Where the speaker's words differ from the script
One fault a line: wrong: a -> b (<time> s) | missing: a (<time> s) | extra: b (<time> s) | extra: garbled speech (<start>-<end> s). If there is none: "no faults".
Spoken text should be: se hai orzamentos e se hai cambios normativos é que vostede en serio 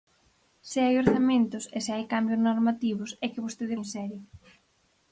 no faults